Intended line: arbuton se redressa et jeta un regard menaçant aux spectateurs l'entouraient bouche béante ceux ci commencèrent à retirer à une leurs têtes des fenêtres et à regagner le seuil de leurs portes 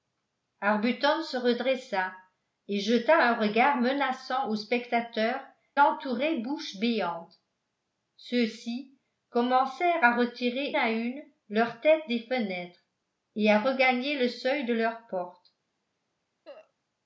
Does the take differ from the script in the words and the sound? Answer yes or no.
yes